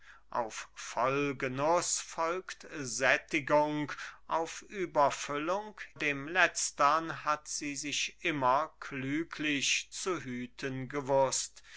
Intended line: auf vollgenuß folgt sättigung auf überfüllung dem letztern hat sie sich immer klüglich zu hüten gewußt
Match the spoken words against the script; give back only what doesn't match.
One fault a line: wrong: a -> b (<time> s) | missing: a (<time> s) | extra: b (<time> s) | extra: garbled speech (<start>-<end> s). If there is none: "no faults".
no faults